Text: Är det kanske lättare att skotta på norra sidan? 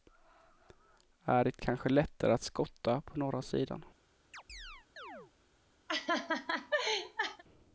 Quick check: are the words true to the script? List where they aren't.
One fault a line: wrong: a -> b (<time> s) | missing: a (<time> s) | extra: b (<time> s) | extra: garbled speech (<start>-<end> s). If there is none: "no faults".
no faults